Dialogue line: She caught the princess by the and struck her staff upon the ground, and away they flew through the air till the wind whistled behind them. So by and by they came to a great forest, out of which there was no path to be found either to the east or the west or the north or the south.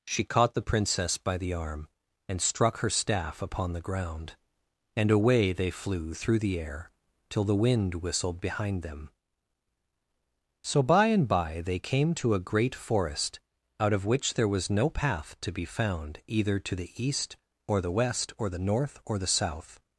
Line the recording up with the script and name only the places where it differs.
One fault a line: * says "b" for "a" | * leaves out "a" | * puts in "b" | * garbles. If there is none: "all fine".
* puts in "arm"